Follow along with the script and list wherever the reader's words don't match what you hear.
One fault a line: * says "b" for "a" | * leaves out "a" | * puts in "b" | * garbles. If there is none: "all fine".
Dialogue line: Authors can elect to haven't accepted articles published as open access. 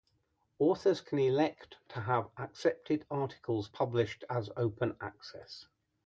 * says "have" for "haven't"